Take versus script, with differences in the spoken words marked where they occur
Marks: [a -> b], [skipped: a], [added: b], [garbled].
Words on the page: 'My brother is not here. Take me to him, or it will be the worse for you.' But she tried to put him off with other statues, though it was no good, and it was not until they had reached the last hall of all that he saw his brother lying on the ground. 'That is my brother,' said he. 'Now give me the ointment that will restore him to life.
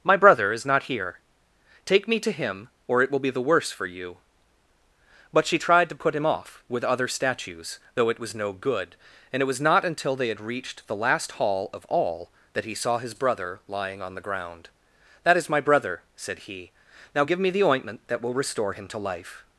'My brother is not here. Take me to him, or it will be the worse for you.' But she tried to put him off with other statues, though it was no good, and it was not until they had reached the last hall of all that he saw his brother lying on the ground. 'That is my brother,' said he. 'Now give me the ointment that will restore him to life.